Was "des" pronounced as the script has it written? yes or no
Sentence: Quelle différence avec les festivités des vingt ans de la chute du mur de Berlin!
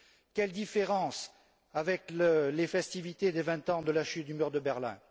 yes